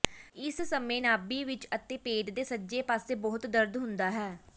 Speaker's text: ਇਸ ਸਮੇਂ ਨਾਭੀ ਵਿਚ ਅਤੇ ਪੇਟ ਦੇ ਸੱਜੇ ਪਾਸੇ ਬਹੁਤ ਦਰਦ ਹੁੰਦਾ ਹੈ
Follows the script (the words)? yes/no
yes